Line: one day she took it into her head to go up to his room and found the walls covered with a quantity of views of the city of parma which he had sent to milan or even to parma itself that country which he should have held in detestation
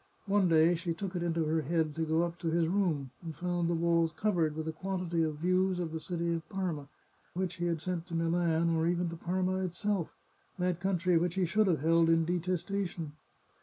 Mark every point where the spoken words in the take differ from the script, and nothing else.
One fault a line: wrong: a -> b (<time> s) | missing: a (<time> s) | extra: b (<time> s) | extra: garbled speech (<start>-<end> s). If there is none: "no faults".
no faults